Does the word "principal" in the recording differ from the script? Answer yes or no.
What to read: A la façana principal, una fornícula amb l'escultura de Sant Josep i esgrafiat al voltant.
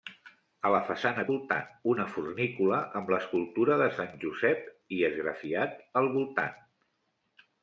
yes